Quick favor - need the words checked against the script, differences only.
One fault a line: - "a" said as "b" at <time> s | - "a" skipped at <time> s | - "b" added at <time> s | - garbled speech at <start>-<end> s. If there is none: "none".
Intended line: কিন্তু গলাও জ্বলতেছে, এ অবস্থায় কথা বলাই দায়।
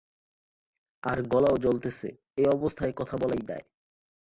- "কিন্তু" said as "আর" at 1.0 s